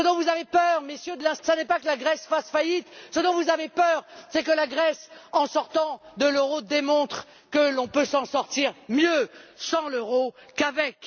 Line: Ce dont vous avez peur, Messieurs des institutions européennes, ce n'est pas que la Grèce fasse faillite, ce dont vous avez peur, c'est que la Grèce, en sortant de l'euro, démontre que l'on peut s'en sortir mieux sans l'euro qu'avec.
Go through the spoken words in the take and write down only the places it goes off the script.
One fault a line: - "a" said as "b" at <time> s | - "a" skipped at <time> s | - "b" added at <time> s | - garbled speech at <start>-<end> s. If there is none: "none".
- "des institutions européennes" skipped at 1.1 s